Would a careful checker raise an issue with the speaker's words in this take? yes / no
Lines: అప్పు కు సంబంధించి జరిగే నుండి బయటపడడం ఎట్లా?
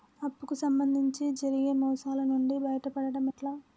yes